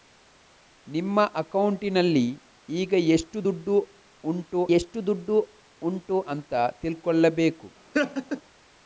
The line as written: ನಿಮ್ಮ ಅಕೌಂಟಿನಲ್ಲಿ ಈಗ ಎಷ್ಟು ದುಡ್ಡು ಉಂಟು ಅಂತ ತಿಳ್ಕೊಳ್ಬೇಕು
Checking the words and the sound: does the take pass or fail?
fail